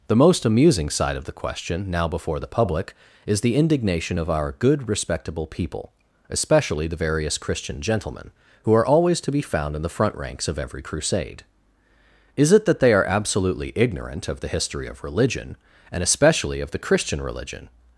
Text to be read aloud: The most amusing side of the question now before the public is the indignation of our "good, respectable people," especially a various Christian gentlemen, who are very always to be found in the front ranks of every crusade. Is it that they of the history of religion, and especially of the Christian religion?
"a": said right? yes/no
no